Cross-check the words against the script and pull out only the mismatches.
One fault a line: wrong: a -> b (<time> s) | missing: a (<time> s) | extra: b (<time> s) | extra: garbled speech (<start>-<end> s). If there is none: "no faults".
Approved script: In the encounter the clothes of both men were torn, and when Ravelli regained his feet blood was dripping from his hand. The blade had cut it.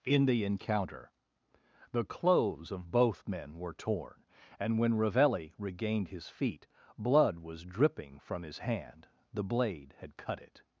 no faults